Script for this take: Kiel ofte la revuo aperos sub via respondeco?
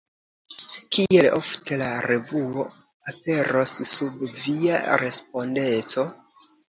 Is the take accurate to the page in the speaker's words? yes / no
yes